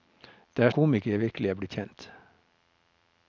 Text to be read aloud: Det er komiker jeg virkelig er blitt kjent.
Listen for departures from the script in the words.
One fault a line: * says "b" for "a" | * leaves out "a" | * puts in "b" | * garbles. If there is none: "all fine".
all fine